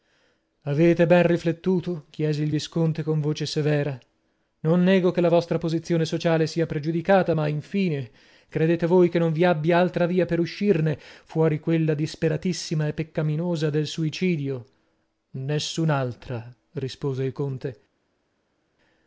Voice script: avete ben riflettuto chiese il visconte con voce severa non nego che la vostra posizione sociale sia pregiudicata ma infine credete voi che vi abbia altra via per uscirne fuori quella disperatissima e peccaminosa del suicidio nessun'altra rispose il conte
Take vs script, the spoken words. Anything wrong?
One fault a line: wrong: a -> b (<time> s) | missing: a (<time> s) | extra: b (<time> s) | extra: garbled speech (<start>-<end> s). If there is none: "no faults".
extra: non (9.2 s)